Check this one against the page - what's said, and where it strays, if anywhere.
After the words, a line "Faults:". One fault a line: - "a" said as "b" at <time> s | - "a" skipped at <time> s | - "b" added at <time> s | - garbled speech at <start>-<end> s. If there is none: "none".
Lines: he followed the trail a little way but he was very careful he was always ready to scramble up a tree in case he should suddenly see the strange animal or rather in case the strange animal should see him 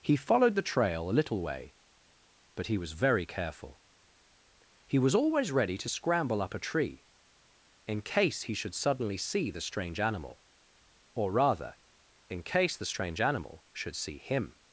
he followed the trail a little way but he was very careful he was always ready to scramble up a tree in case he should suddenly see the strange animal or rather in case the strange animal should see him
Faults:
none